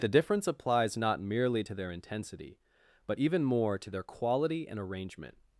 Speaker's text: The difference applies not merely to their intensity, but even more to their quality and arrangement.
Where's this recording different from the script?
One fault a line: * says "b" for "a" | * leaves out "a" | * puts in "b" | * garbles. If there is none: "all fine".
all fine